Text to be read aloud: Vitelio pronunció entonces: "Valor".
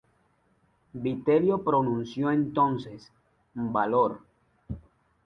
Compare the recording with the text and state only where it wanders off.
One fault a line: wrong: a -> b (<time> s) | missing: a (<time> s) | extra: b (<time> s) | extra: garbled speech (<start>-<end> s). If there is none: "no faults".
no faults